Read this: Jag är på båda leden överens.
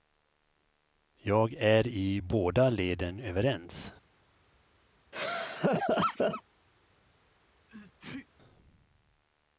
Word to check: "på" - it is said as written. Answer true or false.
false